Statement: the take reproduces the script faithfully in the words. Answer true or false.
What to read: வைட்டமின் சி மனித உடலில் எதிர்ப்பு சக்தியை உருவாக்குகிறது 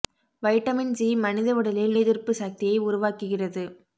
true